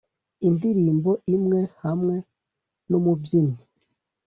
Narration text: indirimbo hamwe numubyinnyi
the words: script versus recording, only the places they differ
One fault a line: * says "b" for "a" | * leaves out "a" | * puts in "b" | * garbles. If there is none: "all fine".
* puts in "imwe"